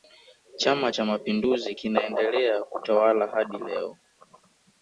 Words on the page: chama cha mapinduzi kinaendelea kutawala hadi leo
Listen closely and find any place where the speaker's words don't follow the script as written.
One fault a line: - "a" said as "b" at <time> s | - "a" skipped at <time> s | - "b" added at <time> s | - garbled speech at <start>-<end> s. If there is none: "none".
none